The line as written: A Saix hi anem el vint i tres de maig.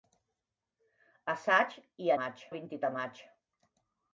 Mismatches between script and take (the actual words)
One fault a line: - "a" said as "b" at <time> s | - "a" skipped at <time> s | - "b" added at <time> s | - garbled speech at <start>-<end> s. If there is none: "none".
- "anem" said as "maig" at 2.2 s
- "tres" skipped at 2.8 s